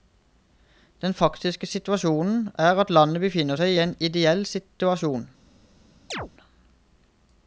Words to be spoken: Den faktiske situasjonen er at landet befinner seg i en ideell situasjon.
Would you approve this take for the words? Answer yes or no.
yes